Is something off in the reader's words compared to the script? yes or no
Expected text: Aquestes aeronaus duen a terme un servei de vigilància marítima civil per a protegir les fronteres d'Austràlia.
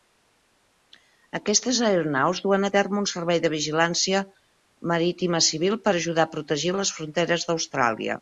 yes